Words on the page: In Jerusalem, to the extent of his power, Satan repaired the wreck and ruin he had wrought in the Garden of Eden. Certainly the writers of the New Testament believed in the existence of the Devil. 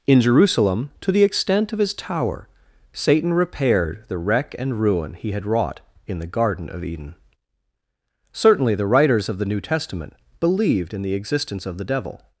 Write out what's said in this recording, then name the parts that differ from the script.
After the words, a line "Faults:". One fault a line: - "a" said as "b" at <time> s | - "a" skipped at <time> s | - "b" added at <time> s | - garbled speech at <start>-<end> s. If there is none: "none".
In Jerusalem, to the extent of his tower, Satan repaired the wreck and ruin he had wrought in the Garden of Eden. Certainly the writers of the New Testament believed in the existence of the Devil.
Faults:
- "power" said as "tower" at 1.9 s